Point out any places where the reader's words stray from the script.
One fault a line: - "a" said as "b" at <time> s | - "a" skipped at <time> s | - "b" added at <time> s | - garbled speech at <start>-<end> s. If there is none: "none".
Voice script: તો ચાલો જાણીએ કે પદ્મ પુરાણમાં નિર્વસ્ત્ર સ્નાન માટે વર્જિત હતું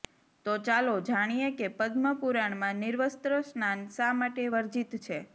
- "શા" added at 3.9 s
- "હતું" said as "છે" at 5.0 s